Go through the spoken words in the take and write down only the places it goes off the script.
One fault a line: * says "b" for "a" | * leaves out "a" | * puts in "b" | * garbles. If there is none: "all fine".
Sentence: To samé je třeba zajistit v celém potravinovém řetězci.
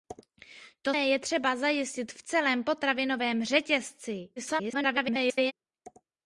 * leaves out "samé"
* garbles